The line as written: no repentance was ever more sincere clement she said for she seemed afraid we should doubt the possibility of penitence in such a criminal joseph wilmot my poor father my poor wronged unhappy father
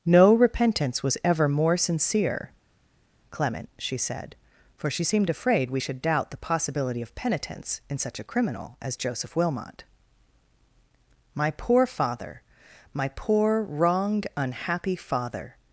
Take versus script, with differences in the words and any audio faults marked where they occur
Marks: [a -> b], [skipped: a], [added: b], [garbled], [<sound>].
no repentance was ever more sincere clement she said for she seemed afraid we should doubt the possibility of penitence in such a criminal [added: as] joseph wilmot my poor father my poor wronged unhappy father